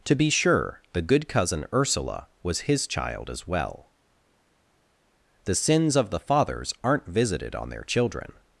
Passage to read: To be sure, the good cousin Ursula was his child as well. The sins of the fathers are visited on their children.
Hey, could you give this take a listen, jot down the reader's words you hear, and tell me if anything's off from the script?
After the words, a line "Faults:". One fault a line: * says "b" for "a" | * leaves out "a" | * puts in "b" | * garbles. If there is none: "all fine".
To be sure, the good cousin Ursula was his child as well. The sins of the fathers aren't visited on their children.
Faults:
* says "aren't" for "are"